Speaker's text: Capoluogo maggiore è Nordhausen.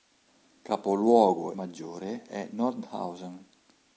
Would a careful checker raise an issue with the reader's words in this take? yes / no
no